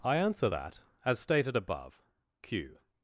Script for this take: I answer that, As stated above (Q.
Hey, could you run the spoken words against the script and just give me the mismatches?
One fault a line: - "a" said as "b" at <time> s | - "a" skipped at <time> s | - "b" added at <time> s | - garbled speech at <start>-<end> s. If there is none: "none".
none